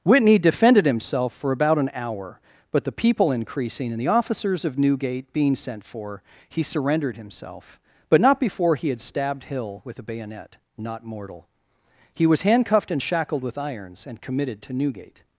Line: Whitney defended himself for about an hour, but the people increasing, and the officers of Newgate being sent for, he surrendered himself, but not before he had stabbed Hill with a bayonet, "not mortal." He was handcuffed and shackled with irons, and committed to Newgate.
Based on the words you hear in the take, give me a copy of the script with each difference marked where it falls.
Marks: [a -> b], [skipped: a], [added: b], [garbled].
Whitney defended himself for about an hour, but the people increasing, and the officers of Newgate being sent for, he surrendered himself, but not before he had stabbed Hill with a bayonet, "not mortal." He was handcuffed and shackled with irons, and committed to Newgate.